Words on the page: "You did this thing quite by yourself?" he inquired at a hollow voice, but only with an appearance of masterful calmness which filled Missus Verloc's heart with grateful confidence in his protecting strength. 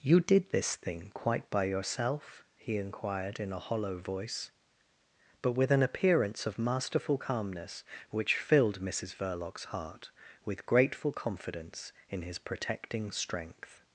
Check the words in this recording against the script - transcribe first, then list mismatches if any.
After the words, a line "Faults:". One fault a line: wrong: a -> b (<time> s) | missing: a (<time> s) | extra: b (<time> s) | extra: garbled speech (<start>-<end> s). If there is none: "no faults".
"You did this thing quite by yourself?" he inquired in a hollow voice, but with an appearance of masterful calmness which filled Missus Verloc's heart with grateful confidence in his protecting strength.
Faults:
wrong: at -> in (3.4 s)
missing: only (5.5 s)